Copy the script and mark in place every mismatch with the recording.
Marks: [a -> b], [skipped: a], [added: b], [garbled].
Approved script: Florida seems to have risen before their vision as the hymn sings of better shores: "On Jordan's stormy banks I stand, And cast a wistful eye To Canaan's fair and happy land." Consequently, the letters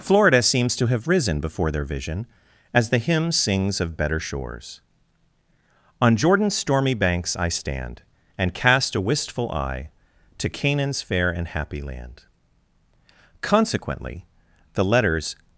Florida seems to have risen before their vision as the hymn sings of better shores: "On Jordan's stormy banks I stand, And cast a wistful eye To Canaan's fair and happy land." Consequently, the letters